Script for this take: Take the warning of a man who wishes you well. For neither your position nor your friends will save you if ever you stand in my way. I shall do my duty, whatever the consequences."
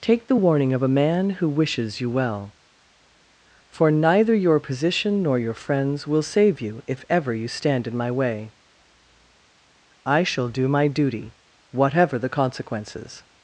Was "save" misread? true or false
false